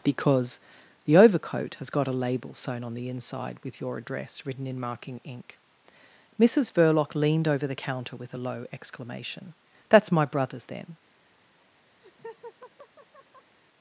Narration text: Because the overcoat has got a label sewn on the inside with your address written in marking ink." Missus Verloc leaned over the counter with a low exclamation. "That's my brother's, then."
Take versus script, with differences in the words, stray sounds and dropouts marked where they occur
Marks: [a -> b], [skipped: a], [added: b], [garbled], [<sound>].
Because the overcoat has got a label sewn on the inside with your address written in marking ink." Missus Verloc leaned over the counter with a low exclamation. "That's my brother's, then." [laugh]